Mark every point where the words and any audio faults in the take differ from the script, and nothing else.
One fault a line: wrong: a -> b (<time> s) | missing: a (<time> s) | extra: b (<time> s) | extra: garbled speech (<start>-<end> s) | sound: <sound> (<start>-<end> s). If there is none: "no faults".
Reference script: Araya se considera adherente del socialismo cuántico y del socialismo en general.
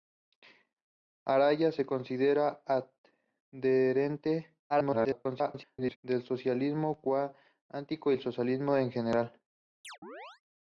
extra: garbled speech (4.7-6.0 s)
sound: chirp (9.8-10.4 s)